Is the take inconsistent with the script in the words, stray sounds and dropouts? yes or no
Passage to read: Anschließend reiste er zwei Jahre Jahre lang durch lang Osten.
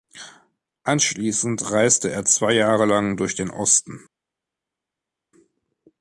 yes